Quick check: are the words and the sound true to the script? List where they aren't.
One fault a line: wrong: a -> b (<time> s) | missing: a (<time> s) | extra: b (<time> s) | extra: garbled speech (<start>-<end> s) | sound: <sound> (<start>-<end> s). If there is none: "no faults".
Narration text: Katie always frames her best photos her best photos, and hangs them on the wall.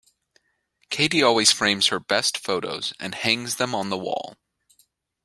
missing: her best photos (2.9 s)